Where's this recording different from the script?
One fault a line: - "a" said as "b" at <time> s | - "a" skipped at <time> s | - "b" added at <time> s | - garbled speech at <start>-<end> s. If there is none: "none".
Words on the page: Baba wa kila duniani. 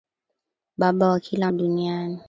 none